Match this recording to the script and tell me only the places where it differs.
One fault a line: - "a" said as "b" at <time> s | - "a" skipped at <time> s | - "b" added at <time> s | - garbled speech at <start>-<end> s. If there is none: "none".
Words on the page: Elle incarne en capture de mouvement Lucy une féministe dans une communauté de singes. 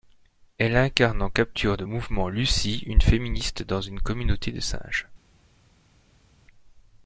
none